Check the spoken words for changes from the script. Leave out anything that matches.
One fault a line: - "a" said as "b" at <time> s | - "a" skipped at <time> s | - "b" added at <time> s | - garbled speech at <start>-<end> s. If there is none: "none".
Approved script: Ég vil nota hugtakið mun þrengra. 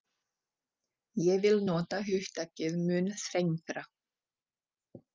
none